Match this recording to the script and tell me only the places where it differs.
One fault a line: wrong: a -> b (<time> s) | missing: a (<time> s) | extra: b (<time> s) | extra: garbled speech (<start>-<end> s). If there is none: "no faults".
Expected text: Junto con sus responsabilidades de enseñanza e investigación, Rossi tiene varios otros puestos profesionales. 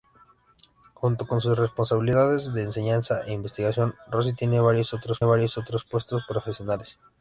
extra: varios otros (5.2 s)